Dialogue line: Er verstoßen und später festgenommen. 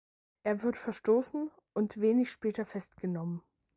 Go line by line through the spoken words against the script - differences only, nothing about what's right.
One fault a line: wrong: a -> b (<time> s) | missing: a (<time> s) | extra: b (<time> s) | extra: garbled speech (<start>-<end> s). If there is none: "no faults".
extra: wird (0.6 s)
extra: wenig (2.0 s)